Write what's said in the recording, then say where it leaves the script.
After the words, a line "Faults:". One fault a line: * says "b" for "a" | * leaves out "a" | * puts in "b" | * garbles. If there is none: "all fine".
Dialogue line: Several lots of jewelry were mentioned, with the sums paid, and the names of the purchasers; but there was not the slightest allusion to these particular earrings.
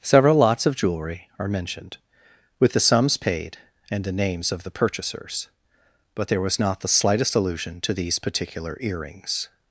Several lots of jewelry are mentioned, with the sums paid, and the names of the purchasers; but there was not the slightest allusion to these particular earrings.
Faults:
* says "are" for "were"